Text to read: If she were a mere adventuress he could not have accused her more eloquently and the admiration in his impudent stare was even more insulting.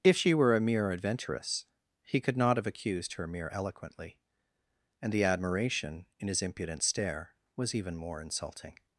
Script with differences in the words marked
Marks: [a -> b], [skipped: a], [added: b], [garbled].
If she were a mere adventuress he could not have accused her [more -> mere] eloquently and the admiration in his impudent stare was even more insulting.